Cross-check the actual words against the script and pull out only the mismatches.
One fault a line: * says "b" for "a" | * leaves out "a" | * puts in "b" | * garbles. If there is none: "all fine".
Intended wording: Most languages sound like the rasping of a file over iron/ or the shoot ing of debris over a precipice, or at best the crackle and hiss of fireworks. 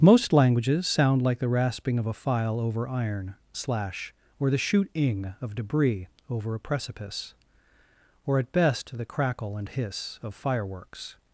* puts in "slash"